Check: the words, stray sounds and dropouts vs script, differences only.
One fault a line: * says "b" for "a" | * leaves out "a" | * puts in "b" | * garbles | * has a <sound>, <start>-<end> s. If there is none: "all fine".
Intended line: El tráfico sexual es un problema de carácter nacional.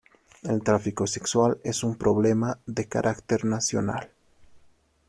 all fine